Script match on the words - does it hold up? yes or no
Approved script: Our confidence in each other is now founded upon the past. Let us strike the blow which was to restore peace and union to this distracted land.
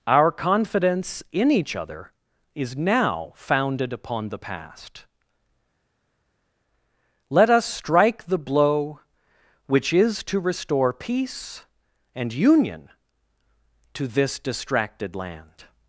no